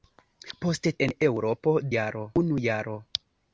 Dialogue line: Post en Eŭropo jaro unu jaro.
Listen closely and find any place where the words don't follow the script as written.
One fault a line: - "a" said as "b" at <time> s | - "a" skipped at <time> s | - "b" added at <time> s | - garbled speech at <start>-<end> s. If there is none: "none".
none